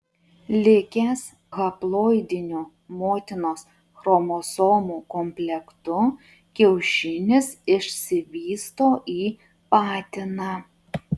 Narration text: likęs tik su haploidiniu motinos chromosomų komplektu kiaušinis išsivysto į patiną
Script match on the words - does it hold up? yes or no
no